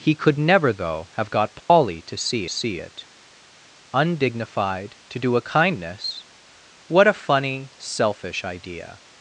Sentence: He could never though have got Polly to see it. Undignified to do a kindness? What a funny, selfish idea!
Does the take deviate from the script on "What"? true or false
false